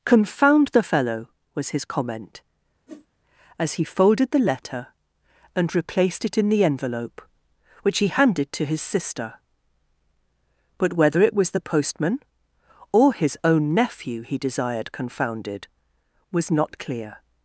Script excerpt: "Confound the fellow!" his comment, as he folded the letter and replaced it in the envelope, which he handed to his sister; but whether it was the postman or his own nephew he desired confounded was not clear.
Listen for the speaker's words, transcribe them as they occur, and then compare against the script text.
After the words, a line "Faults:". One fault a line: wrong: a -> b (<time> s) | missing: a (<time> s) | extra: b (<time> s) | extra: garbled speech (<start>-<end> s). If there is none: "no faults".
"Confound the fellow!" was his comment, as he folded the letter and replaced it in the envelope, which he handed to his sister; but whether it was the postman or his own nephew he desired confounded was not clear.
Faults:
extra: was (1.5 s)